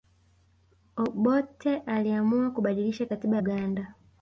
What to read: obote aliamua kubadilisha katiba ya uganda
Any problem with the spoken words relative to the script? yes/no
yes